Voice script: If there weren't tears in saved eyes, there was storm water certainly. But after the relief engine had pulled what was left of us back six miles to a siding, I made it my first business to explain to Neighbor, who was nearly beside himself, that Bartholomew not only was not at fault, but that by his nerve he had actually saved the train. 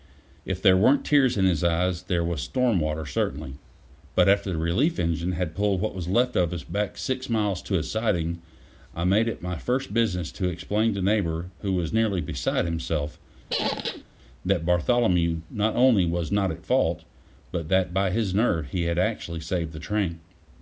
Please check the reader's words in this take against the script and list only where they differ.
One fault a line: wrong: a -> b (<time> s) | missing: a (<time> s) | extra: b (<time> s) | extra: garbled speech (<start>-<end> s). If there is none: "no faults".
wrong: saved -> his (1.4 s)